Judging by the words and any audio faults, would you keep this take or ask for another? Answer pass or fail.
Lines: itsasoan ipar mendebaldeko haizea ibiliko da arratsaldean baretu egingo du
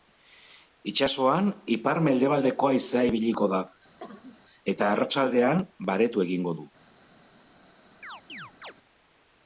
fail